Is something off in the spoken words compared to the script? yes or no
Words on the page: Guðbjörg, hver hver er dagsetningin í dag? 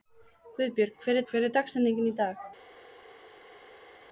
no